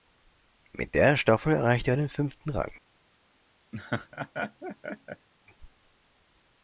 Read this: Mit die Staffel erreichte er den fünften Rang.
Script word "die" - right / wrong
wrong